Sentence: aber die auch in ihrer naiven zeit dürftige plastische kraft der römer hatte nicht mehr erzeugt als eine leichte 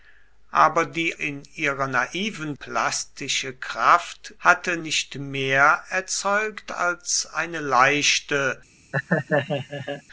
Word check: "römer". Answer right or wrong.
wrong